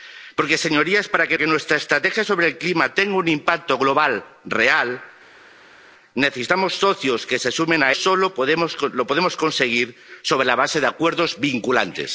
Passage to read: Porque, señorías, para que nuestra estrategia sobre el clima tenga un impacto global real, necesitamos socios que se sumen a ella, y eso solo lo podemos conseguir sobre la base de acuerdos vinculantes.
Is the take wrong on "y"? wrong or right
wrong